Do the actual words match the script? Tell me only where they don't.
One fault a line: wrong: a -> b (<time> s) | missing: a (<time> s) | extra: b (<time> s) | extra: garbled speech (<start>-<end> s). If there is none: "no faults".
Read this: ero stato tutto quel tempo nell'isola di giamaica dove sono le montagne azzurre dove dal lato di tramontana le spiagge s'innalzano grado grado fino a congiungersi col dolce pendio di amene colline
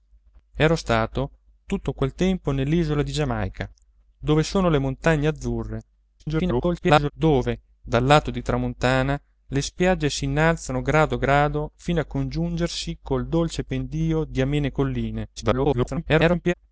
extra: garbled speech (6.2-7.1 s)
extra: garbled speech (15.4-16.5 s)